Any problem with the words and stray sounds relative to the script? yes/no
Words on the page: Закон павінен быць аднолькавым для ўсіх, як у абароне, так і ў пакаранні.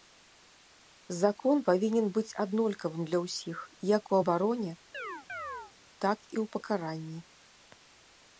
yes